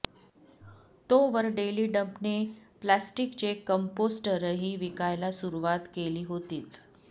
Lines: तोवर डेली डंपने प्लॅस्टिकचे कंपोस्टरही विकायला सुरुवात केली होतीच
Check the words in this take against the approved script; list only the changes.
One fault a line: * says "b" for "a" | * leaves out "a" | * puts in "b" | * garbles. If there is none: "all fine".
all fine